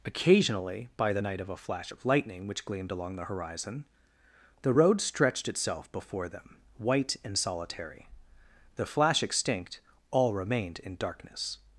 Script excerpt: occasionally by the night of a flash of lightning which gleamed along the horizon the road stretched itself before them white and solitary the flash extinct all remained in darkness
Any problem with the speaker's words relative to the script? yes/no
no